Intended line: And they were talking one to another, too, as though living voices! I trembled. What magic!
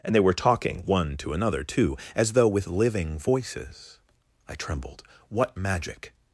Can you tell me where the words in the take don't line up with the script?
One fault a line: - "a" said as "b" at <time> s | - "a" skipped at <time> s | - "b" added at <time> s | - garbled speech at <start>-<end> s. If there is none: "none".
- "with" added at 2.5 s